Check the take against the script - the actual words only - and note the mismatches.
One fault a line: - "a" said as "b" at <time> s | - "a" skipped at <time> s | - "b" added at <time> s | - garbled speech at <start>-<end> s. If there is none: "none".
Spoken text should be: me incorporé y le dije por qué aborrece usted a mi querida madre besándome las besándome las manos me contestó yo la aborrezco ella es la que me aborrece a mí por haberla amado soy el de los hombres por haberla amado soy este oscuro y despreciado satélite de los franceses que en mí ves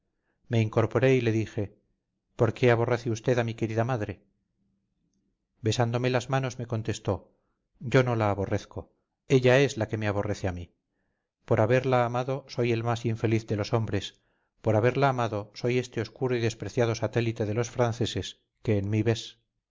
- "besándome las" skipped at 6.3 s
- "no" added at 8.0 s
- "más infeliz" added at 12.8 s